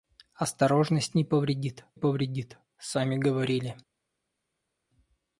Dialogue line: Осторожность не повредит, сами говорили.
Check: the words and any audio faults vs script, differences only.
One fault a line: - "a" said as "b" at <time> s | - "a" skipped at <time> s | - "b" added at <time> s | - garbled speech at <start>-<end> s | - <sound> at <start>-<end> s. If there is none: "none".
- "повредит" added at 1.9 s